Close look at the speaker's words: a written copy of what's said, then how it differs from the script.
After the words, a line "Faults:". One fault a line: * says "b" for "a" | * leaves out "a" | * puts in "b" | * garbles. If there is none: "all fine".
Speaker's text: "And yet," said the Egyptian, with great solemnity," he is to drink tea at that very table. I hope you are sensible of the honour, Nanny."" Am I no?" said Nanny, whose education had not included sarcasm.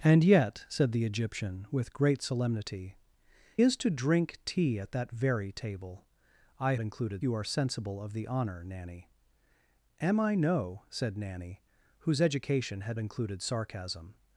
"And yet," said the Egyptian, with great solemnity," is to drink tea at that very table. I included you are sensible of the honour, Nanny."" Am I no?" said Nanny, whose education had included sarcasm.
Faults:
* leaves out "he"
* says "included" for "hope"
* leaves out "not"